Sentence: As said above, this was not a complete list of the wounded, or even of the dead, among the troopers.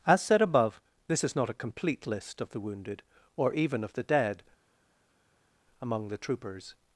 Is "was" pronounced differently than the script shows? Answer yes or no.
yes